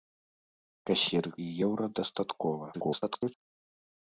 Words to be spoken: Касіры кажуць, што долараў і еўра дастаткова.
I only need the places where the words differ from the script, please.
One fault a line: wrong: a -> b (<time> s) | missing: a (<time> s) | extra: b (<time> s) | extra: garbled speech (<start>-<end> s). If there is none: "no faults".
missing: кажуць што долараў (1.3 s)
extra: garbled speech (2.7-3.3 s)